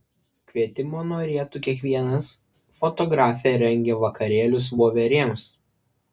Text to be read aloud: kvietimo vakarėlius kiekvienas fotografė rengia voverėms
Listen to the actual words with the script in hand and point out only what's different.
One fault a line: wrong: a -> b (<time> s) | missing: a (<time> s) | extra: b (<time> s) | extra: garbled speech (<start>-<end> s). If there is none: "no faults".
wrong: vakarėlius -> norėtų (1.1 s)
extra: vakarėlius (4.1 s)